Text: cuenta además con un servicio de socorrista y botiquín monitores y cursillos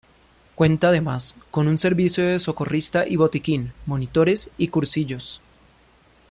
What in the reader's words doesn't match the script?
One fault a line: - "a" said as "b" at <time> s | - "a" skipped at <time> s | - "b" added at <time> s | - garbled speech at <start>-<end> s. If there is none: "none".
none